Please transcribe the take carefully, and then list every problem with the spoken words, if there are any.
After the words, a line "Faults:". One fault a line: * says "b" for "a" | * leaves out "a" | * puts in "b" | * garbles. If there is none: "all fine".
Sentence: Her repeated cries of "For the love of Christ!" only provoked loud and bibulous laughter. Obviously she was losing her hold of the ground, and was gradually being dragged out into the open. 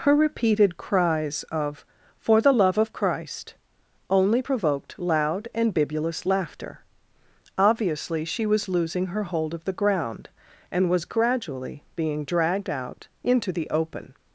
Her repeated cries of "For the love of Christ!" only provoked loud and bibulous laughter. Obviously she was losing her hold of the ground, and was gradually being dragged out into the open.
Faults:
all fine